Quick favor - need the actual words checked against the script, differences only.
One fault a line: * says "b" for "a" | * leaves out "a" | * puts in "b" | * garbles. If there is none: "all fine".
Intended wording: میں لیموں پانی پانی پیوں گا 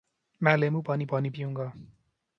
all fine